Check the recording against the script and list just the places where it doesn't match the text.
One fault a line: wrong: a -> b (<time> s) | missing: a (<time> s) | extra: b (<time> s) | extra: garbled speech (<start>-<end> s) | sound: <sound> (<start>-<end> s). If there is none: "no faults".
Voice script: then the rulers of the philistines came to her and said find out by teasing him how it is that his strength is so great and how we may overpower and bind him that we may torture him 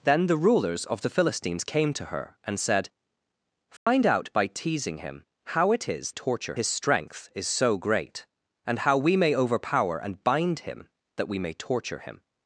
sound: dropout (3.8-3.9 s)
wrong: that -> torture (6.1 s)